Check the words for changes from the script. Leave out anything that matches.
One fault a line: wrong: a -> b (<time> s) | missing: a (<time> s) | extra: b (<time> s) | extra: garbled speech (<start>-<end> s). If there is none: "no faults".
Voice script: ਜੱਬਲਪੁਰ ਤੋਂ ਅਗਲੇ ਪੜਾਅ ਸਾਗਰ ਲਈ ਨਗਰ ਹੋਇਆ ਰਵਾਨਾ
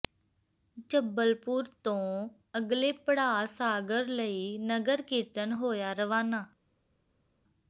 extra: ਕੀਰਤਨ (5.0 s)